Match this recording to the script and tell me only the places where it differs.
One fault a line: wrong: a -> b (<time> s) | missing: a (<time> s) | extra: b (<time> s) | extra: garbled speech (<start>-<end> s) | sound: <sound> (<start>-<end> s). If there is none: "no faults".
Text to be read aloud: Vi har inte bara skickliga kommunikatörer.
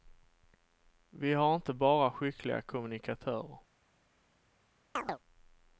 sound: chirp (5.0-5.2 s)